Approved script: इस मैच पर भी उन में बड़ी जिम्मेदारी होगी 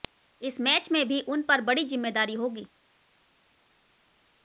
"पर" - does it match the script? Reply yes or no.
no